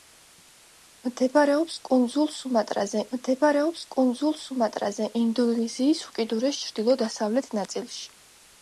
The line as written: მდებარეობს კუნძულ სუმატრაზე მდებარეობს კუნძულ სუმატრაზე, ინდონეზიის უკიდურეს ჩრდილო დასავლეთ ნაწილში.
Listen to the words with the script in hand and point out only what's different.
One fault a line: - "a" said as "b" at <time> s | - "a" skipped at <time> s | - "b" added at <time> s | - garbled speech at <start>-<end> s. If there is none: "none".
none